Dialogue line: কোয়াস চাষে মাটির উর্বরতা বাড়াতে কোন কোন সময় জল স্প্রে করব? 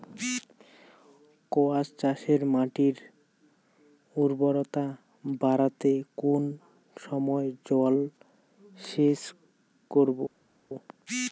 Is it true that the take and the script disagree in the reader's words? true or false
true